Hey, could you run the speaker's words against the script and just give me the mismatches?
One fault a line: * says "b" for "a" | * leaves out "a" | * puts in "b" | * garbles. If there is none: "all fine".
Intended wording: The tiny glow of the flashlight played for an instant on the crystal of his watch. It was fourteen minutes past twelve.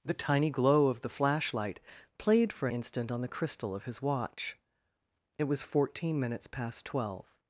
* leaves out "an"